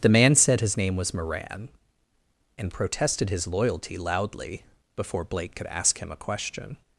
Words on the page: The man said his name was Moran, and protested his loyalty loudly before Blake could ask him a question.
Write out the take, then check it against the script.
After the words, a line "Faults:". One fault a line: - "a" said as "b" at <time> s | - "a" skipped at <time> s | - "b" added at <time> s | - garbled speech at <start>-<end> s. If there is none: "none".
The man said his name was Moran, and protested his loyalty loudly before Blake could ask him a question.
Faults:
none